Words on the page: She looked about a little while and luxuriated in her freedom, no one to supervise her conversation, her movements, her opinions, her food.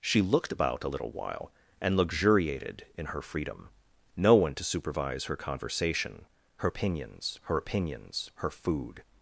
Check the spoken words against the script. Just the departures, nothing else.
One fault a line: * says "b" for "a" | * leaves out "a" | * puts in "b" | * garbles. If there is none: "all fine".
* says "opinions" for "movements"